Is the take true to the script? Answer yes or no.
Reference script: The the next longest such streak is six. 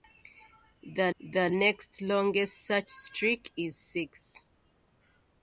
yes